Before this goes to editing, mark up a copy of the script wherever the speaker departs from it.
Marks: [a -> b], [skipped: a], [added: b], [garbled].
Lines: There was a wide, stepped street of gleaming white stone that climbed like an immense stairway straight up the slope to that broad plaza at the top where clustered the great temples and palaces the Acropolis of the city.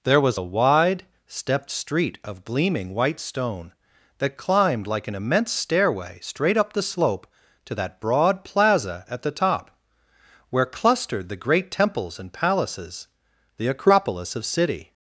There was a wide, stepped street of gleaming white stone that climbed like an immense stairway straight up the slope to that broad plaza at the top where clustered the great temples and palaces the Acropolis of [skipped: the] city.